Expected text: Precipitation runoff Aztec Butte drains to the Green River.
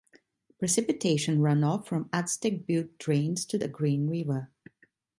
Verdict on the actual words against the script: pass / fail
fail